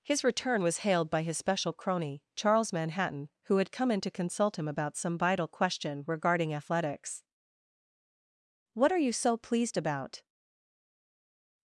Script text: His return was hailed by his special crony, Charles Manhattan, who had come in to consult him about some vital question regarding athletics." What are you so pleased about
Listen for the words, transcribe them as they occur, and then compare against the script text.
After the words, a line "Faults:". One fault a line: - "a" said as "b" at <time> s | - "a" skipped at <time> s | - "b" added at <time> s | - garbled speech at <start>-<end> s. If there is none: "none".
His return was hailed by his special crony, Charles Manhattan, who had come in to consult him about some vital question regarding athletics." What are you so pleased about
Faults:
none